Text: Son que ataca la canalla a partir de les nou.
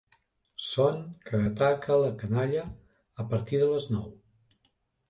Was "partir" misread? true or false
false